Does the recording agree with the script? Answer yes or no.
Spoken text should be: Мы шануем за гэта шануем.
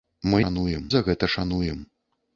yes